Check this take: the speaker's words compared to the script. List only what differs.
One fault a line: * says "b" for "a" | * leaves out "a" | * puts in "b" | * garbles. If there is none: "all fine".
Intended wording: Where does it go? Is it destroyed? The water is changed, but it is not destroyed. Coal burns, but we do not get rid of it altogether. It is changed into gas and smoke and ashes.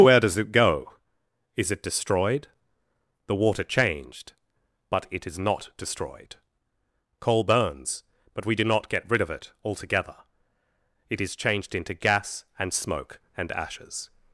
* leaves out "is"